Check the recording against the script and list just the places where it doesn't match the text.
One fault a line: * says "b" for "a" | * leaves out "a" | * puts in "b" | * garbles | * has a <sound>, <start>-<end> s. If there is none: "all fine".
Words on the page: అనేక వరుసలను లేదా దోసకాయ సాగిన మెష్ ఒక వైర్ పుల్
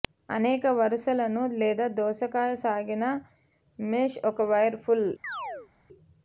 * has a chirp, 5.2-5.7 s